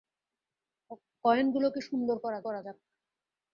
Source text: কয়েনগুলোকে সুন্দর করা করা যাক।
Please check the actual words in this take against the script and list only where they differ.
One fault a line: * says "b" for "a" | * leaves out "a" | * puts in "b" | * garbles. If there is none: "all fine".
all fine